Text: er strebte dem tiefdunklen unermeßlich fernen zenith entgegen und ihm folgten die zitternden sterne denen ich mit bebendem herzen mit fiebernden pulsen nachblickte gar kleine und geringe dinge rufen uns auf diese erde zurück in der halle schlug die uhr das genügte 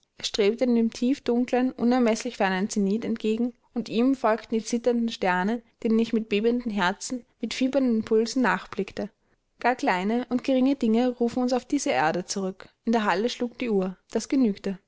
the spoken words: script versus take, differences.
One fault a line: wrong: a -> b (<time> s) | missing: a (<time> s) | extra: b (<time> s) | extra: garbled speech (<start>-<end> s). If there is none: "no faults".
no faults